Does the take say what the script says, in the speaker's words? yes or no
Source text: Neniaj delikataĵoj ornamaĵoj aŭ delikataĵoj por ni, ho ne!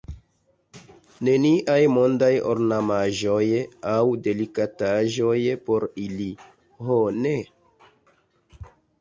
no